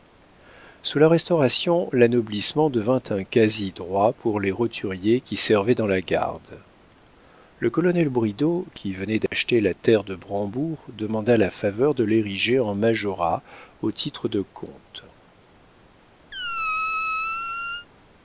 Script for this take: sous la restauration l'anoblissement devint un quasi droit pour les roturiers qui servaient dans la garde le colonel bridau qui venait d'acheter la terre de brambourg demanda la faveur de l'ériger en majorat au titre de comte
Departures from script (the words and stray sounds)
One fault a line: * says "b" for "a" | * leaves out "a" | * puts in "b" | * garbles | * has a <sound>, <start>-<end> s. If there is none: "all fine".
* has a dropout, 9.3-9.3 s
* has a squeak, 16.3-17.9 s